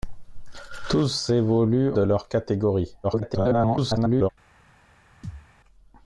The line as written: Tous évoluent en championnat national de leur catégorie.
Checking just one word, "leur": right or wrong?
right